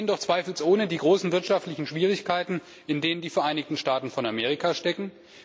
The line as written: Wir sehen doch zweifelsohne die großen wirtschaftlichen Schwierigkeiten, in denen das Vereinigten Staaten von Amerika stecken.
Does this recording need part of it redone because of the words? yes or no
yes